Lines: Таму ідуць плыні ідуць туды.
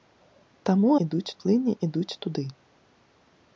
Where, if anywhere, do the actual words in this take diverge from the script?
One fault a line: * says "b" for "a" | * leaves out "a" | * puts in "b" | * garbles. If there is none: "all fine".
all fine